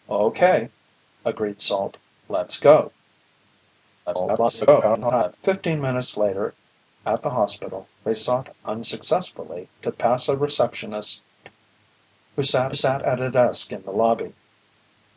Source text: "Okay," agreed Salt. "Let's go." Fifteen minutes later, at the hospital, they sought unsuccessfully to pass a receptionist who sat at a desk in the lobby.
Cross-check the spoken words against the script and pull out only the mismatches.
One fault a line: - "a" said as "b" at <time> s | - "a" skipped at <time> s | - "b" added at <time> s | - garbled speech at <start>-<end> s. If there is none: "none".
- garbled speech at 4.1-5.4 s
- "sat" added at 12.7 s